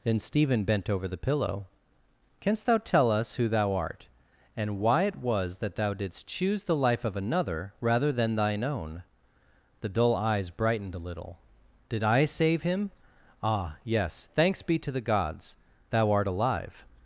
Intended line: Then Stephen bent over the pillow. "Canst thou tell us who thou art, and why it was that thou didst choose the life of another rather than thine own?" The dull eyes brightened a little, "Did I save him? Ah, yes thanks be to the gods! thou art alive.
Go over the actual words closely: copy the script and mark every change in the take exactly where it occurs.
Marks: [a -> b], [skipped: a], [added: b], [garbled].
Then Stephen bent over the pillow. "Canst thou tell us who thou art, and why it was that thou didst choose the life of another rather than thine own?" The dull eyes brightened a little, "Did I save him? Ah, yes thanks be to the gods! thou art alive.